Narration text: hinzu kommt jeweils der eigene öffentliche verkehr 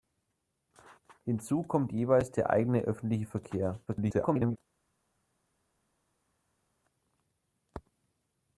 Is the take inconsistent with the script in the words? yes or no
yes